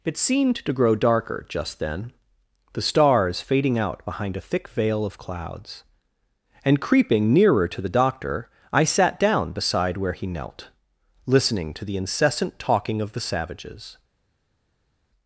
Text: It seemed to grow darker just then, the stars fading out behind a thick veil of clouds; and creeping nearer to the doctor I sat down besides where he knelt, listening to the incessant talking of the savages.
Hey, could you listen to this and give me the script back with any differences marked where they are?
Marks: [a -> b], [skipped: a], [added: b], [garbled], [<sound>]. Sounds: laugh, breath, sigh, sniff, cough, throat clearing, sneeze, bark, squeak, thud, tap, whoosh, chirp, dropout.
It seemed to grow darker just then, the stars fading out behind a thick veil of clouds; and creeping nearer to the doctor I sat down [besides -> beside] where he knelt, listening to the incessant talking of the savages.